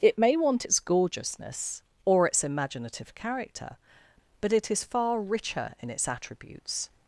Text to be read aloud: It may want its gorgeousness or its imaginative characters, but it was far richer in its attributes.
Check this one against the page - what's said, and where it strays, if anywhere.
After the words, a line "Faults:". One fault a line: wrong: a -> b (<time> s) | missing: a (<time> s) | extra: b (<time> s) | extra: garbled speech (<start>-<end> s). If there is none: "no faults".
It may want its gorgeousness or its imaginative character, but it is far richer in its attributes.
Faults:
wrong: characters -> character (3.1 s)
wrong: was -> is (4.7 s)